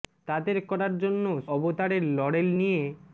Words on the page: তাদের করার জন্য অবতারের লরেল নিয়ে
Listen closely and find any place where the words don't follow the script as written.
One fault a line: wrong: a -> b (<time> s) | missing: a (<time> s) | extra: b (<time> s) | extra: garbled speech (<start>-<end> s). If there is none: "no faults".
no faults